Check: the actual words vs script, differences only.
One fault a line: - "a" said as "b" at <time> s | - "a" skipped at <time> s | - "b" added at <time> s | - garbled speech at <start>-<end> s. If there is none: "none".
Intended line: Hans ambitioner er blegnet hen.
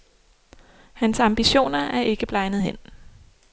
- "ikke" added at 2.0 s